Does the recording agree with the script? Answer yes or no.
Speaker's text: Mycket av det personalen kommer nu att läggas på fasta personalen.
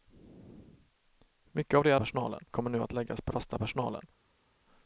yes